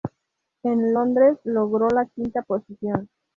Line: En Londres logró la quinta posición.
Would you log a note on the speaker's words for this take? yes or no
no